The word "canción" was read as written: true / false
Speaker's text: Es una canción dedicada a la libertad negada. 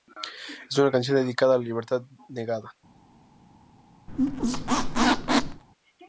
true